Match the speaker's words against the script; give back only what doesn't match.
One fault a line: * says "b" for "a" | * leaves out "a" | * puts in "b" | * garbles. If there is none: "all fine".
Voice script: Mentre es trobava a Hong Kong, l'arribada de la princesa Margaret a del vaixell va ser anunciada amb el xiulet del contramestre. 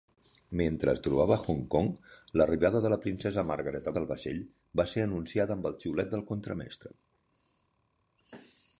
all fine